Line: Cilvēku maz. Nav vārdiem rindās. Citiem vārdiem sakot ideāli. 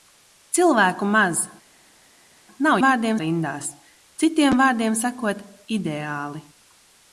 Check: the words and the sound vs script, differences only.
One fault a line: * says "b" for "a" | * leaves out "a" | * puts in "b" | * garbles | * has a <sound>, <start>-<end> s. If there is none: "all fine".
all fine